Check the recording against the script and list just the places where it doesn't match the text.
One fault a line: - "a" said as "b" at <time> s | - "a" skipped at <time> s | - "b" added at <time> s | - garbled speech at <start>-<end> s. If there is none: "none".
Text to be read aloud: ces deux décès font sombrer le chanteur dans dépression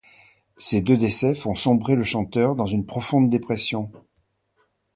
- "une profonde" added at 2.6 s